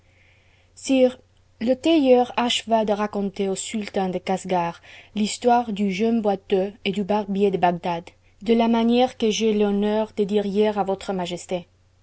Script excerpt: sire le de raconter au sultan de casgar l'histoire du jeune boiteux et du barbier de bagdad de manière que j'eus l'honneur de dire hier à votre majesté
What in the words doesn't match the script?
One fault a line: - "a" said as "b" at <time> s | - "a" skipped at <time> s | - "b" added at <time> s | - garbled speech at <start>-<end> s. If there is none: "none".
- "tailleur acheva" added at 1.8 s
- "la" added at 8.6 s